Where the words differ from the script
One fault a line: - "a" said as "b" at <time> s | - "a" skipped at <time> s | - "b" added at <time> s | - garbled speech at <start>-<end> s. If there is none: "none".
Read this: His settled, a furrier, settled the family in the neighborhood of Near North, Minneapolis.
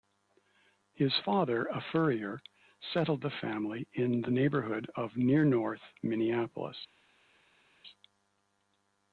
- "settled" said as "father" at 1.3 s